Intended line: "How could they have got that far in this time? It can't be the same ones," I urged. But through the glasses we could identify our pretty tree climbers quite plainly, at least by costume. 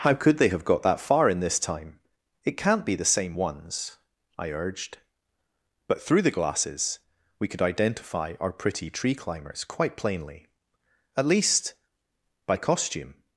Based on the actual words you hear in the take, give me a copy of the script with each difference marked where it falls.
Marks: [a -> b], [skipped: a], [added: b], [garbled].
"How could they have got that far in this time? It can't be the same ones," I urged. But through the glasses we could identify our pretty tree climbers quite plainly, at least by costume.